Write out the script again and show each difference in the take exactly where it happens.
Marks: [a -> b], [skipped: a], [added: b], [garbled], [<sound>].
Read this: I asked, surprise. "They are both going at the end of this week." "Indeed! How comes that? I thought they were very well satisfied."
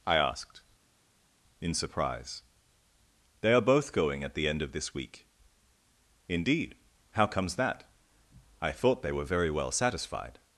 I asked, [added: in] surprise. "They are both going at the end of this week." "Indeed! How comes that? I thought they were very well satisfied."